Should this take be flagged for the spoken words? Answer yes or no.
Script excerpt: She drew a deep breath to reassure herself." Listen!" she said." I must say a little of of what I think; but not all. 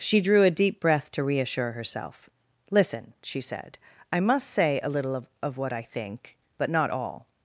no